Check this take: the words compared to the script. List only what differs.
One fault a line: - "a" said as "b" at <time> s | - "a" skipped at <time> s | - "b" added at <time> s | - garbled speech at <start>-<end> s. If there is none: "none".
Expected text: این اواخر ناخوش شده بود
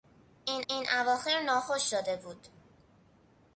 - "این" added at 0.7 s